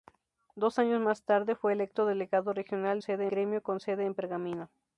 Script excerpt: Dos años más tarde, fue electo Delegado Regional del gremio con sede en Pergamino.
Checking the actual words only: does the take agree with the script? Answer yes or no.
no